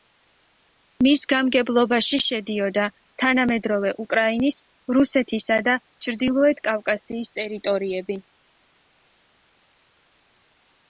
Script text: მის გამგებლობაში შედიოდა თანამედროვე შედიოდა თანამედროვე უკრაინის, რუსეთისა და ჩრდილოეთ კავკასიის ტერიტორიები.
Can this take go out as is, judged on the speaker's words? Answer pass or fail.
fail